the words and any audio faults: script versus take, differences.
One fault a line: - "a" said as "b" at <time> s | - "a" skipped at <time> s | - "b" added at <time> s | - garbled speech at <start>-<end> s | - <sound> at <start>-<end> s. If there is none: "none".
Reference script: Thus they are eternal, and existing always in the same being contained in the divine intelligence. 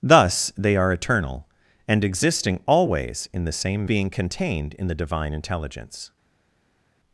none